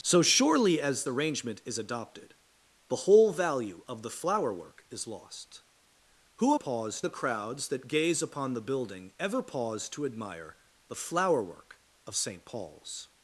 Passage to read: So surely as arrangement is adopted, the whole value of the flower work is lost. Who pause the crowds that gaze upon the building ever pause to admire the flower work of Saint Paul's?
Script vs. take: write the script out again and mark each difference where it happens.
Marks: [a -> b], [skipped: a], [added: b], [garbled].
So surely as arrangement is adopted, the whole value of the flower work is lost. Who pause the crowds that gaze upon the building ever pause to admire the flower work of Saint Paul's?